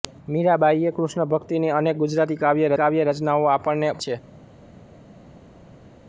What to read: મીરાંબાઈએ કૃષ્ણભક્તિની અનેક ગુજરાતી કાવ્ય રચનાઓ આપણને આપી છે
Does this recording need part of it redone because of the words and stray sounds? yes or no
yes